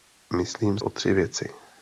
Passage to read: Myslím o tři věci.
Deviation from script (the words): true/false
false